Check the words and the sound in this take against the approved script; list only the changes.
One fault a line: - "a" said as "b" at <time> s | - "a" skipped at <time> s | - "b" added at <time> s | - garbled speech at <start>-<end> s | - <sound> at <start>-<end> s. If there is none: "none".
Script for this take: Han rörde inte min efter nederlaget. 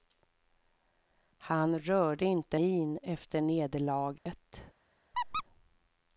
- dropout at 4.2-4.3 s
- squeak at 5.1-5.4 s